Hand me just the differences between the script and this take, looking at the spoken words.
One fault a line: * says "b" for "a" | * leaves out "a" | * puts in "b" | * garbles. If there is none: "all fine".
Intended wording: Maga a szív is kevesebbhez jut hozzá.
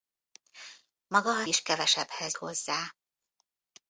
* leaves out "szív"
* leaves out "jut"